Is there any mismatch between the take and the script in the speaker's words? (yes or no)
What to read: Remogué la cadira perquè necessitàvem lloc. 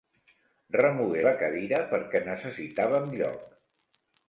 no